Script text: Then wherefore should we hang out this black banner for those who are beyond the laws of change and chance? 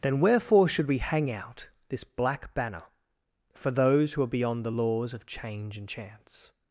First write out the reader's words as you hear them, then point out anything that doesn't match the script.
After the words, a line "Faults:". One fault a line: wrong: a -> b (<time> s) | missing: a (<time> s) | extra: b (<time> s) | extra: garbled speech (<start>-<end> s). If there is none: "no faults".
Then wherefore should we hang out this black banner for those who are beyond the laws of change and chance?
Faults:
no faults